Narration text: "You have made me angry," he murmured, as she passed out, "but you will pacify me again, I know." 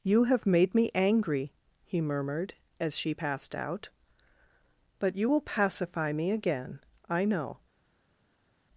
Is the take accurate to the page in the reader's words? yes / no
yes